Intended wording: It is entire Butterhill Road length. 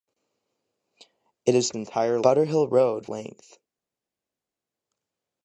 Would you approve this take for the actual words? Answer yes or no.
yes